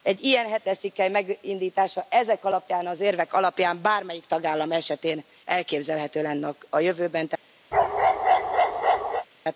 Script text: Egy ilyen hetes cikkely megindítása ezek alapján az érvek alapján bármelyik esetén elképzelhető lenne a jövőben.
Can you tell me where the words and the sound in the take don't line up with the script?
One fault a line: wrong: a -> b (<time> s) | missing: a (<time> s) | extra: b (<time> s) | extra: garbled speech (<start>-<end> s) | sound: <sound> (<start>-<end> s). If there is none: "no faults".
extra: tagállam (4.3 s)
sound: bark (7.7-9.3 s)